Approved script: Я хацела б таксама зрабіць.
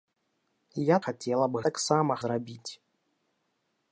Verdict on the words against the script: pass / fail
pass